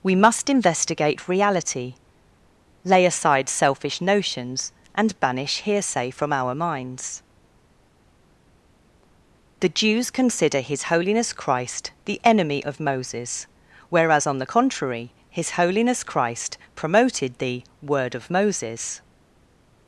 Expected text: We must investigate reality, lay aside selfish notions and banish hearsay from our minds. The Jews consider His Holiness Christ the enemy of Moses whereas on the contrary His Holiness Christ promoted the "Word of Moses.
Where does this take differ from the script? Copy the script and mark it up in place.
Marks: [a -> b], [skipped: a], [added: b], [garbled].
We must investigate reality, lay aside selfish notions and banish hearsay from our minds. The Jews consider His Holiness Christ the enemy of Moses whereas on the contrary His Holiness Christ promoted the "Word of Moses.